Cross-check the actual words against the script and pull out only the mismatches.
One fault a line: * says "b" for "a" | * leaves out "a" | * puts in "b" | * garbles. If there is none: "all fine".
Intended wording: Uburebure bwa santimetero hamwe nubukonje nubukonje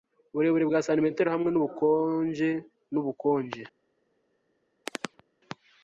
all fine